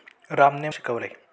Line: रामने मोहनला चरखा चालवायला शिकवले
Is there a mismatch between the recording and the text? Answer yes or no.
yes